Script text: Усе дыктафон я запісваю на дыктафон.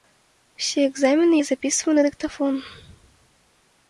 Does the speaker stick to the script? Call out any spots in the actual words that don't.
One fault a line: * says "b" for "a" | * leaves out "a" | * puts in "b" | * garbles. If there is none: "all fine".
* says "экзамены" for "дыктафон"